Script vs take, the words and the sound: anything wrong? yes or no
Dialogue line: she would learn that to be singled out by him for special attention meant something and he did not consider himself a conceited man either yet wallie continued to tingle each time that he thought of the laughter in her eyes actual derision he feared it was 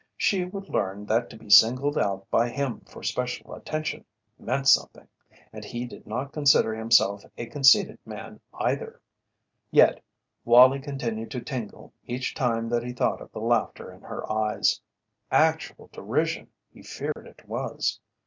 yes